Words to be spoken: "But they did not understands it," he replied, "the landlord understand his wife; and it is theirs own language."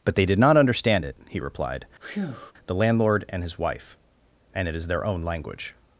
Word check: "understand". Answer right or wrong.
wrong